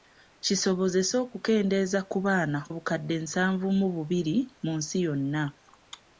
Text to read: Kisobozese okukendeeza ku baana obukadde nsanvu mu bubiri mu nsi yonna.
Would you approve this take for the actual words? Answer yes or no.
yes